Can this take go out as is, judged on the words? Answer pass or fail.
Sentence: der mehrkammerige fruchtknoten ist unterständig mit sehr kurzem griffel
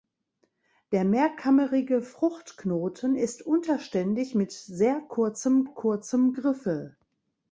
fail